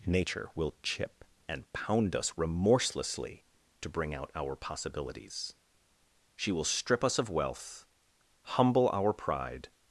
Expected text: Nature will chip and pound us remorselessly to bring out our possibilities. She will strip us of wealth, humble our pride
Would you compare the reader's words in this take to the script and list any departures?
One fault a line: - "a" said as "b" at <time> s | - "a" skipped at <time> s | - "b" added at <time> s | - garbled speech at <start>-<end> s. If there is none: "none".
none